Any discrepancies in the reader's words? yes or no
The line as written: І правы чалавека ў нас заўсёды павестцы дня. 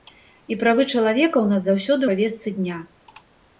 no